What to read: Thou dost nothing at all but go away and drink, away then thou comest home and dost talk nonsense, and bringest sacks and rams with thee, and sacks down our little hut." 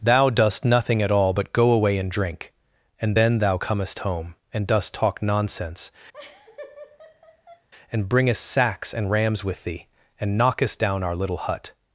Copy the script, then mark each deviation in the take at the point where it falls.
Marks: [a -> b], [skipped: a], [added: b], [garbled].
Thou dost nothing at all but go away and drink, [away -> and] then thou comest home and dost talk nonsense, and bringest sacks and rams with thee, and [sacks -> knockest] down our little hut."